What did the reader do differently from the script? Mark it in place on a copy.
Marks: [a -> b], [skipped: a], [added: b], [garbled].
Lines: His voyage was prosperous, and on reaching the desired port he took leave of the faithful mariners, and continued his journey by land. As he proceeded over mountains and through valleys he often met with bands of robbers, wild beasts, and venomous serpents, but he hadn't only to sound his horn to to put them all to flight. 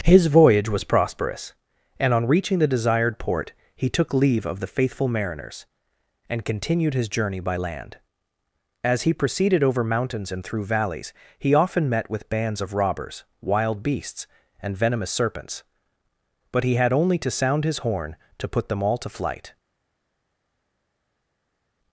His voyage was prosperous, and on reaching the desired port he took leave of the faithful mariners, and continued his journey by land. As he proceeded over mountains and through valleys he often met with bands of robbers, wild beasts, and venomous serpents, but he [hadn't -> had] only to sound his horn to [skipped: to] put them all to flight.